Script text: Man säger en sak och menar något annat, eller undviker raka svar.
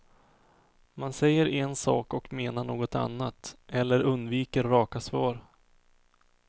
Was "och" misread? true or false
false